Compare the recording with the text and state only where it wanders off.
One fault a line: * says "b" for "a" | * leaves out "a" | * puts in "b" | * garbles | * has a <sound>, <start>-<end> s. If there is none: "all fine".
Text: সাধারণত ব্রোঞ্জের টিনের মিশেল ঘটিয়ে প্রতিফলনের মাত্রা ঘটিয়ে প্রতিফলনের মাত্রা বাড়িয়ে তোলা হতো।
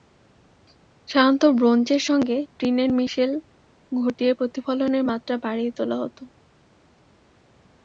* puts in "সঙ্গে"
* leaves out "ঘটিয়ে প্রতিফলনের মাত্রা"